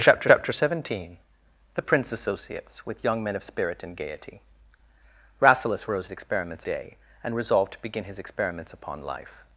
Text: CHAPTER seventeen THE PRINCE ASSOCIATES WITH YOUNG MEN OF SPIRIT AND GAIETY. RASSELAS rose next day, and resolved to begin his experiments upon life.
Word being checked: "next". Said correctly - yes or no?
no